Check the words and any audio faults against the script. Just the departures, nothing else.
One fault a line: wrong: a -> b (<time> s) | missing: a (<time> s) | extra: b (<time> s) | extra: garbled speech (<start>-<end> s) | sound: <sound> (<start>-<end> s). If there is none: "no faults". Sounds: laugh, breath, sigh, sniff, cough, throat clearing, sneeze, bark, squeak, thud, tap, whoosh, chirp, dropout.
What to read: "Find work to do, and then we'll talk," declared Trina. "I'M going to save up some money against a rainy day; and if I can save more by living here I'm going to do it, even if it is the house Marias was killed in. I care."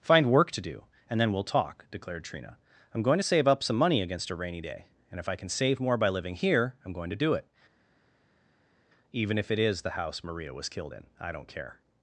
wrong: Marias -> Maria (10.2 s)
extra: don't (11.3 s)